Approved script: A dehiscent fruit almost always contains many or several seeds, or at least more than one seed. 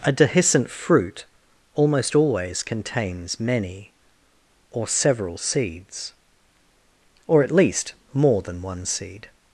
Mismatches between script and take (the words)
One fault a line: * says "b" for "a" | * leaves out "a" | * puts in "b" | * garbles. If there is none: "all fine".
all fine